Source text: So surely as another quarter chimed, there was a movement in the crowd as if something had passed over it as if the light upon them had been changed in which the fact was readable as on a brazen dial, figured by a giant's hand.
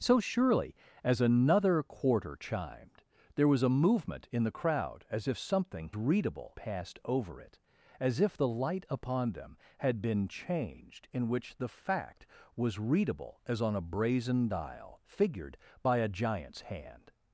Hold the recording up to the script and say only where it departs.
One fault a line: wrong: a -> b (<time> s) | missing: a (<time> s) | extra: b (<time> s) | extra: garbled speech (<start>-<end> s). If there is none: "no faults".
wrong: had -> readable (5.9 s)